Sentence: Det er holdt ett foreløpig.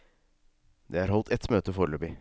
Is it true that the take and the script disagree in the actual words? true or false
true